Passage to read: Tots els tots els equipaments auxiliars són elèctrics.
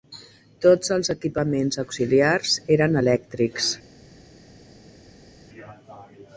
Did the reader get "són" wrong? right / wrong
wrong